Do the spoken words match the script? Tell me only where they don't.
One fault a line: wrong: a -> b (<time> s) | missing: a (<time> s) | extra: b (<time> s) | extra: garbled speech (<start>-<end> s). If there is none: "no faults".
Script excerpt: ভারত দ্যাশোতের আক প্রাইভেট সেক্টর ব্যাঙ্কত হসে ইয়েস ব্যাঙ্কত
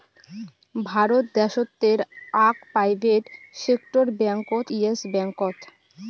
missing: হসে (4.7 s)